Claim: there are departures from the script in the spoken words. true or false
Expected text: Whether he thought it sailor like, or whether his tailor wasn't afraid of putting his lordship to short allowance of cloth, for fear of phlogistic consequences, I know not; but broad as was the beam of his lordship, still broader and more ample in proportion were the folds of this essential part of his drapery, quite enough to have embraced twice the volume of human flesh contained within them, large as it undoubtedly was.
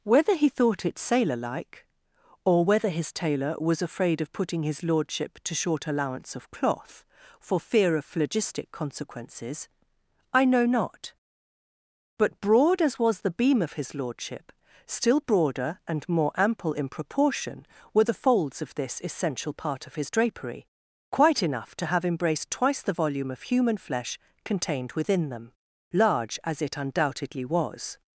true